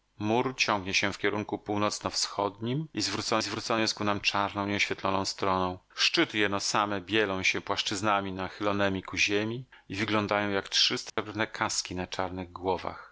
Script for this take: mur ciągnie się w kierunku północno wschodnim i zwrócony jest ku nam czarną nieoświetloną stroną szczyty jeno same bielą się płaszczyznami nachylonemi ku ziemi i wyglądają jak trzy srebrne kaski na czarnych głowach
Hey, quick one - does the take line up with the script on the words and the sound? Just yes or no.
no